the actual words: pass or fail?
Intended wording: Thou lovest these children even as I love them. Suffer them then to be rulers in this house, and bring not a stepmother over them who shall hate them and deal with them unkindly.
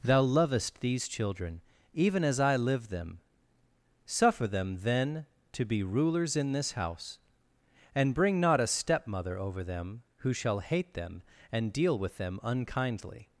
fail